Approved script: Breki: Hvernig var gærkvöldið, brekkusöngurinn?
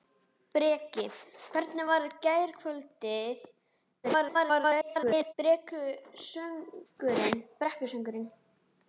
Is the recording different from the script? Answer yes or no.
yes